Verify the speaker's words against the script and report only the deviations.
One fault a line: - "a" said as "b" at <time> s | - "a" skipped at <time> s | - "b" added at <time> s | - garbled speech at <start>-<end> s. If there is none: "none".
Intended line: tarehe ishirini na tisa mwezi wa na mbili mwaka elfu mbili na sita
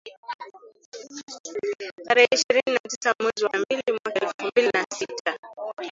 none